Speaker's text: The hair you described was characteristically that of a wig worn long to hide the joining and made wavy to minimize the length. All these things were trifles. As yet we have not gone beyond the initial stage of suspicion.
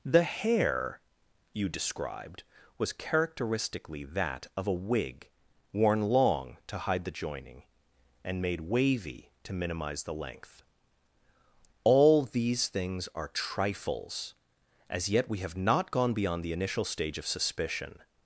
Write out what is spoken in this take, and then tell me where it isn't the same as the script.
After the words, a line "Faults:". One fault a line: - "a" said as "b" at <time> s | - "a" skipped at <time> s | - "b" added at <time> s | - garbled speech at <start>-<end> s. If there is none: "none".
The hair you described was characteristically that of a wig worn long to hide the joining and made wavy to minimize the length. All these things are trifles. As yet we have not gone beyond the initial stage of suspicion.
Faults:
- "were" said as "are" at 13.1 s